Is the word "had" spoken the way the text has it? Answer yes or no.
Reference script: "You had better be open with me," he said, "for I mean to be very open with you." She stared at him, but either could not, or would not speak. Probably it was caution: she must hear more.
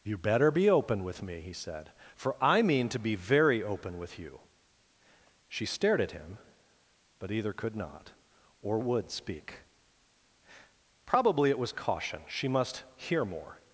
no